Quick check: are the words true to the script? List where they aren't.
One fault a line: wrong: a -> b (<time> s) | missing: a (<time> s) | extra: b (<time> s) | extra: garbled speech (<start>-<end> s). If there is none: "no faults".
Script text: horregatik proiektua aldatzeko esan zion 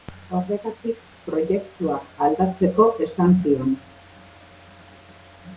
no faults